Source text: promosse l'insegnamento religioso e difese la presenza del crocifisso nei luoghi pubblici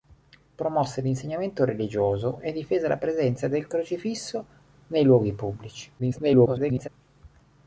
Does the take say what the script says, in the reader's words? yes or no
no